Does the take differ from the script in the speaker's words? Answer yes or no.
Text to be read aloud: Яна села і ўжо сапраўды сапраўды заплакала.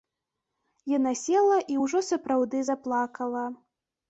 yes